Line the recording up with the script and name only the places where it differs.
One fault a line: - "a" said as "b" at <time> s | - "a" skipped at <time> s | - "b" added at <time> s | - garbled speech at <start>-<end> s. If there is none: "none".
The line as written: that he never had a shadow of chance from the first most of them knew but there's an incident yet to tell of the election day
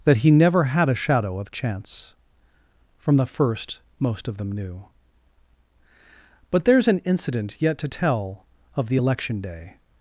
none